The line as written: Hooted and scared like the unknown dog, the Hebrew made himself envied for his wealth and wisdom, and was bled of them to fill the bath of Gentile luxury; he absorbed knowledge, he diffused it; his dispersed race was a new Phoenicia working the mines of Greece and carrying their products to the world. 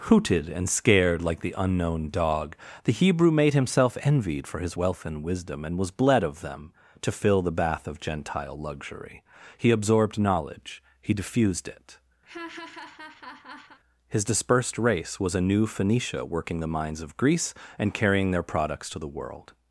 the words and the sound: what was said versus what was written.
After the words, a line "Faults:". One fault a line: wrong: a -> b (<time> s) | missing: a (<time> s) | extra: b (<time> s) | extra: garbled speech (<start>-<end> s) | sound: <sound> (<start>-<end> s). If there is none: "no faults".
Hooted and scared like the unknown dog, the Hebrew made himself envied for his wealth and wisdom, and was bled of them to fill the bath of Gentile luxury; he absorbed knowledge, he diffused it; his dispersed race was a new Phoenicia working the mines of Greece and carrying their products to the world.
Faults:
sound: laugh (12.2-13.8 s)